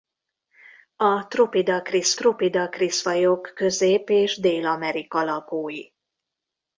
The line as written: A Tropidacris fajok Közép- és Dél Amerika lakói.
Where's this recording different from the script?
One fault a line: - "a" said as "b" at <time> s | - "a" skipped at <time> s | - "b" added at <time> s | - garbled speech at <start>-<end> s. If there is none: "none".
- "Tropidacris" added at 2.1 s